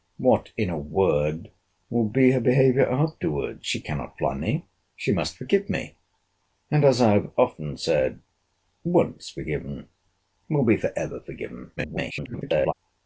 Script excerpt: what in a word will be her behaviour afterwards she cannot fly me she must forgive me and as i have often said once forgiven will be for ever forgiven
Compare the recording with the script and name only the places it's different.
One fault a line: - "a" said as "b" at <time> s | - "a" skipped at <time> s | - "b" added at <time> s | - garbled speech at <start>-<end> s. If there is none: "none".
- garbled speech at 11.8-12.7 s